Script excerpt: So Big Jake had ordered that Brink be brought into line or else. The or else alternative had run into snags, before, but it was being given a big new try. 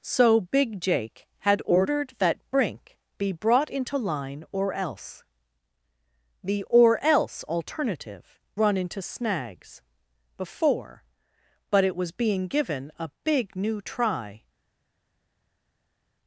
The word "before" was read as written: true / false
true